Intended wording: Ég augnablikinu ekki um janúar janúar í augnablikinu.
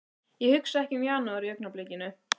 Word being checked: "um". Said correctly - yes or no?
yes